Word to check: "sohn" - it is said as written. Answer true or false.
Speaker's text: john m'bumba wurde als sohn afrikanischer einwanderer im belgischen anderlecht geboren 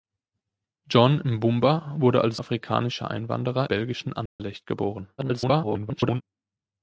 false